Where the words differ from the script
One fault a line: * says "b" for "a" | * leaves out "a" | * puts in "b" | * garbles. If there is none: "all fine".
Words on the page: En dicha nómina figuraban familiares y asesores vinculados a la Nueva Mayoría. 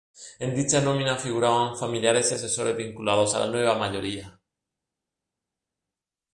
all fine